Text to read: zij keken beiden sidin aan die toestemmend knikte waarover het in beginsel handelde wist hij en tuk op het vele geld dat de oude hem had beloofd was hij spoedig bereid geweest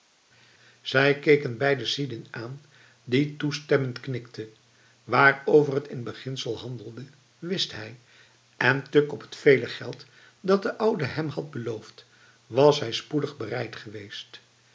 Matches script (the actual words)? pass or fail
pass